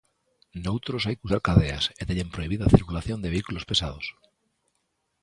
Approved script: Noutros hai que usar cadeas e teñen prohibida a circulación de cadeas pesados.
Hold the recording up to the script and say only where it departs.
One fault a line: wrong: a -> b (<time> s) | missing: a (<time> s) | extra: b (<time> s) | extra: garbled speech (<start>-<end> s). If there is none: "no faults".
wrong: cadeas -> vehículos (3.3 s)